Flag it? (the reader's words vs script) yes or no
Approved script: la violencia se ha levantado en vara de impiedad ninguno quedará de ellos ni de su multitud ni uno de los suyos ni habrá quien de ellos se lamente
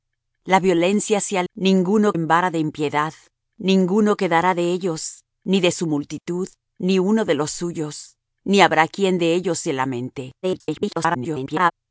yes